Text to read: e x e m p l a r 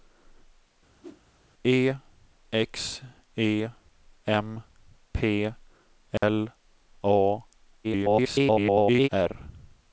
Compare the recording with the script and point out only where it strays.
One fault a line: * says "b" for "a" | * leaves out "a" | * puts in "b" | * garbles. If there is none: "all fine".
* garbles